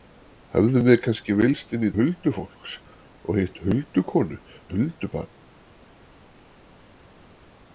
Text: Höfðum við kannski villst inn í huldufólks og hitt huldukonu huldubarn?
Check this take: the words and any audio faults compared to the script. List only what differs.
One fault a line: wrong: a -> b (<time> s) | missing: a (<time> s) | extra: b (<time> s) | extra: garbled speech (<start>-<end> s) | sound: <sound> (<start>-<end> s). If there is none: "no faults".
no faults